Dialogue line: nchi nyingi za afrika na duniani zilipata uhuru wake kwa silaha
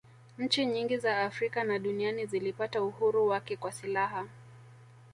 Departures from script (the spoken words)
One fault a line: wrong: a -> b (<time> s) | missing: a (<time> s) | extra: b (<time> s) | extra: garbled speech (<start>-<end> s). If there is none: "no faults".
no faults